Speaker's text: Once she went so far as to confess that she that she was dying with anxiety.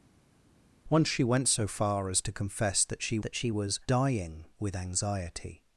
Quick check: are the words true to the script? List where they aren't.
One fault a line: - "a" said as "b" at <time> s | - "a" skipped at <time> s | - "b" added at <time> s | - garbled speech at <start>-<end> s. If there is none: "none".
none